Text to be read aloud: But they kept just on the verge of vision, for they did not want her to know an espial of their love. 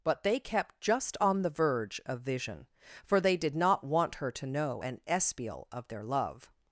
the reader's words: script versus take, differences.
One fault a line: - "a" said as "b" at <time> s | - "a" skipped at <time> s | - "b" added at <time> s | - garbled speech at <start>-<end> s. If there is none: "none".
none